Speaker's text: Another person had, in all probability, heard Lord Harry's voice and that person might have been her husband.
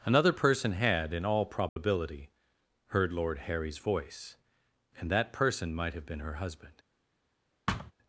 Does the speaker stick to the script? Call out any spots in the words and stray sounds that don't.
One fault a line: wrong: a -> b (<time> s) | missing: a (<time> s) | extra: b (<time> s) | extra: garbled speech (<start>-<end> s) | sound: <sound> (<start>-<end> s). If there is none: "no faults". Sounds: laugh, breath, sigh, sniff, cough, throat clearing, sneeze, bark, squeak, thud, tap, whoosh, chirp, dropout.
sound: dropout (1.7-1.8 s)
sound: thud (7.7-7.9 s)